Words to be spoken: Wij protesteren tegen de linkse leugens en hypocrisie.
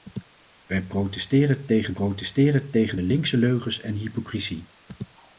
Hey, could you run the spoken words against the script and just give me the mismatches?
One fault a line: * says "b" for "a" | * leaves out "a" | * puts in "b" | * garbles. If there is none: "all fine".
* puts in "protesteren tegen"